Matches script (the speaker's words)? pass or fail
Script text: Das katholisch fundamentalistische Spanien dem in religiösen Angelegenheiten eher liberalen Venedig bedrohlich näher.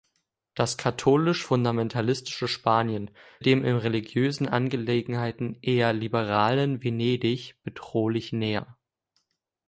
pass